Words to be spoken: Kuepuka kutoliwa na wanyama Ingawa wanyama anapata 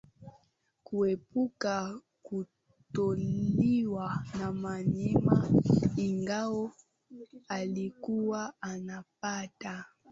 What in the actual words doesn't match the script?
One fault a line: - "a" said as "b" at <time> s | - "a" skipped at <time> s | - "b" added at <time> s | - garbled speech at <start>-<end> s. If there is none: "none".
- "wanyama" said as "alikuwa" at 7.5 s